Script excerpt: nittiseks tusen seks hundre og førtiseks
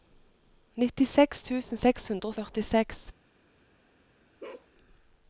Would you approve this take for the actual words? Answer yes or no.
yes